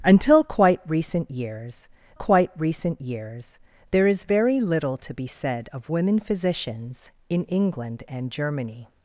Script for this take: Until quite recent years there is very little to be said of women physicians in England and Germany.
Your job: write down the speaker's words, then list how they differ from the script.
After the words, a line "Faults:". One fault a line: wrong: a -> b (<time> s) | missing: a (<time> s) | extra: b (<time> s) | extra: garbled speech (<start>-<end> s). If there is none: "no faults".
Until quite recent years quite recent years there is very little to be said of women physicians in England and Germany.
Faults:
extra: quite recent years (2.1 s)